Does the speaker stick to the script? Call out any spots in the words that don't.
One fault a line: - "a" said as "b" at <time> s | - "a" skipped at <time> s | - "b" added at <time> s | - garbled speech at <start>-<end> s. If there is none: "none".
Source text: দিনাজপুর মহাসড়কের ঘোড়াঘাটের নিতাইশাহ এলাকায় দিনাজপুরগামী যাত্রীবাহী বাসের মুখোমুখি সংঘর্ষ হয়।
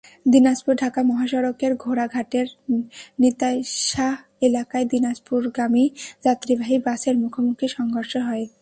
- "ঢাকা" added at 0.7 s